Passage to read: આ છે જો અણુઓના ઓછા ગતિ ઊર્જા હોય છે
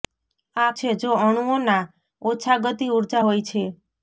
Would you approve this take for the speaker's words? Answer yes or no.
yes